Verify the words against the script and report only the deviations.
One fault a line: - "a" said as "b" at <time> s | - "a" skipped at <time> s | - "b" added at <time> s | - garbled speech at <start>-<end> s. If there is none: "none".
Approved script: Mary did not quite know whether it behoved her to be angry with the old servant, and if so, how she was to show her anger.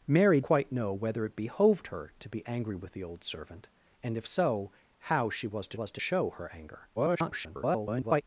- "did not" skipped at 0.4 s
- "was to" added at 5.7 s
- garbled speech at 7.0-8.2 s